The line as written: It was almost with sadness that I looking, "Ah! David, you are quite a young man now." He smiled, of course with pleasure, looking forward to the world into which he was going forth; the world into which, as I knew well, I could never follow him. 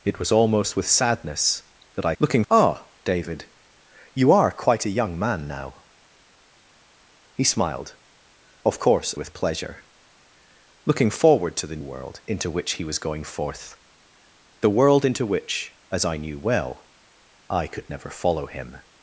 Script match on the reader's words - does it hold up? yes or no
yes